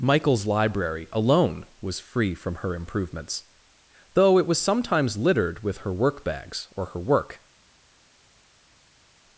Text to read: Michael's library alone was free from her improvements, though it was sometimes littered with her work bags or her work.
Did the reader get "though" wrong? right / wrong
right